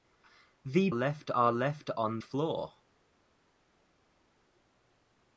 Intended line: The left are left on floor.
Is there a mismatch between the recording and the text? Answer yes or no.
no